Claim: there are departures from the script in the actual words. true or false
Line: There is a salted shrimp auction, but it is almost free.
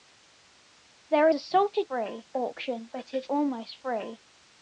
true